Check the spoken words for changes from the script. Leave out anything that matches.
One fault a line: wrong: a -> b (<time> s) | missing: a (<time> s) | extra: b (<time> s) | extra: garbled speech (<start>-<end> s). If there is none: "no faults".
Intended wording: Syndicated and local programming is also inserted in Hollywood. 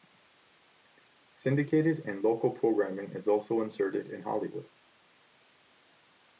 no faults